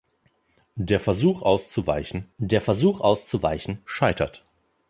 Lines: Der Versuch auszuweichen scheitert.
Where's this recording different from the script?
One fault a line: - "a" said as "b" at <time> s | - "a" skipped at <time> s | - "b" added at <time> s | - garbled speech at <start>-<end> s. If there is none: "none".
- "der Versuch auszuweichen" added at 2.4 s